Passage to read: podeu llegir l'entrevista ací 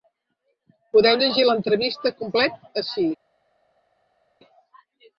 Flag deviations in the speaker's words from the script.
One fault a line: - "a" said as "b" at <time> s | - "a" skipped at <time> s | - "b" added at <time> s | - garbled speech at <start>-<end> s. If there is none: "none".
- "complet" added at 2.2 s